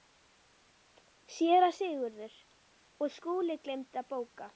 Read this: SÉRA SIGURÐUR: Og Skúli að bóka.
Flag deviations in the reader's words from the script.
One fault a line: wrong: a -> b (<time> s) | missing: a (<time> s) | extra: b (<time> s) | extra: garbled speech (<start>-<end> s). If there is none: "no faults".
extra: gleymdi (3.7 s)